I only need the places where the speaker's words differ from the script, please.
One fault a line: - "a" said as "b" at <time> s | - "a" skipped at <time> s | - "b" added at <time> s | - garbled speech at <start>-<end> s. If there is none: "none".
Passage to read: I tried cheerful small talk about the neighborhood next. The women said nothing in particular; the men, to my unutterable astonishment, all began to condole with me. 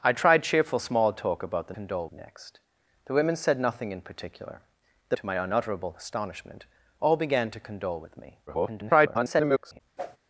- "neighborhood" said as "condole" at 1.7 s
- "men" skipped at 5.2 s
- garbled speech at 8.5-9.8 s